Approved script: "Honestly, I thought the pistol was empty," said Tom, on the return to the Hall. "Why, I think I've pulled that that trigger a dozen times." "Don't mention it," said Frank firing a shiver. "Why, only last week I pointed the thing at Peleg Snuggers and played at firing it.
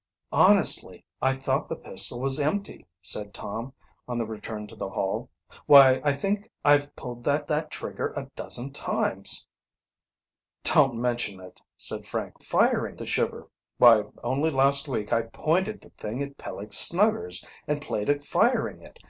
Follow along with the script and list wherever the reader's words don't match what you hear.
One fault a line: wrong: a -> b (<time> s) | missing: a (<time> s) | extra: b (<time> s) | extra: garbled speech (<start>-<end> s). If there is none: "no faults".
no faults